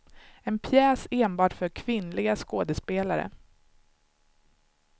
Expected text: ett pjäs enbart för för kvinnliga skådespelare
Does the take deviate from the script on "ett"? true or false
true